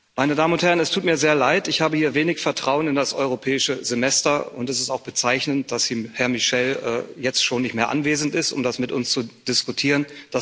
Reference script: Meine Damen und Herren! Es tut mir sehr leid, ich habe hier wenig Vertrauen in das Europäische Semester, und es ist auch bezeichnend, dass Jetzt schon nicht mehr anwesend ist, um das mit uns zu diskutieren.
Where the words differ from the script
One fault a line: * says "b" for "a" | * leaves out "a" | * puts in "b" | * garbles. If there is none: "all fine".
* puts in "Herr Michel"